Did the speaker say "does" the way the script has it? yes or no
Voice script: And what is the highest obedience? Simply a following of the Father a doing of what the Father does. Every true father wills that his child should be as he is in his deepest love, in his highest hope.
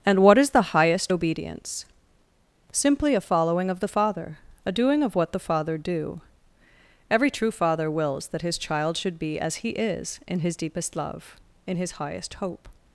no